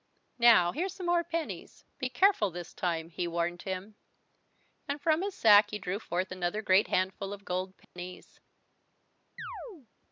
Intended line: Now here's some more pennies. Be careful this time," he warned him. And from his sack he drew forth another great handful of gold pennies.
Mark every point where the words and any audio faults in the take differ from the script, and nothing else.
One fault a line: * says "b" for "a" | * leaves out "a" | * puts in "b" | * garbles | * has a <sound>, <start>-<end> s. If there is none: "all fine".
* has a dropout, 7.8-8.0 s
* has a chirp, 9.4-9.9 s